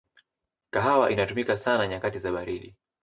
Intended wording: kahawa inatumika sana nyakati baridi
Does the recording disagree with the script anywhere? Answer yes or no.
yes